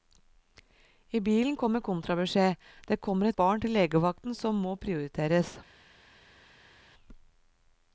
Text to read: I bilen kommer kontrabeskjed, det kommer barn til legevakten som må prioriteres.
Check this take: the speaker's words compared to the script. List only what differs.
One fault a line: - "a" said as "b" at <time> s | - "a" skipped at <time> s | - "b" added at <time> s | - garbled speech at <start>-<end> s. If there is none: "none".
none